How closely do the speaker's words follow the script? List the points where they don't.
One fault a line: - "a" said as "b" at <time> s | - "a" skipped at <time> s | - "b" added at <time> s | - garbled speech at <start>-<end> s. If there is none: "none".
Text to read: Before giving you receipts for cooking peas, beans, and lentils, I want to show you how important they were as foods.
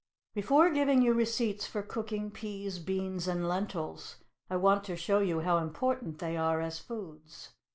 - "were" said as "are" at 6.3 s